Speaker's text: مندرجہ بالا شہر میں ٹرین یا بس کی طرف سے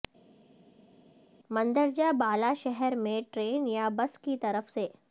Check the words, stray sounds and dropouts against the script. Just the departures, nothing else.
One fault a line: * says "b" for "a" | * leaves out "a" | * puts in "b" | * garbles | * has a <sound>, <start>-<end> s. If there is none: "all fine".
all fine